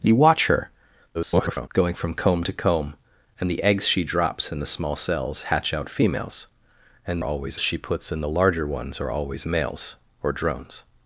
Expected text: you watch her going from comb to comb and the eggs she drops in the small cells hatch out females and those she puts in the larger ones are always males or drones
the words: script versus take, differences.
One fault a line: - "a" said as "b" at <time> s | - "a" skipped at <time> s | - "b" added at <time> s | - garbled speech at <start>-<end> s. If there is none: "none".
- garbled speech at 1.1-1.7 s
- "those" said as "always" at 7.2 s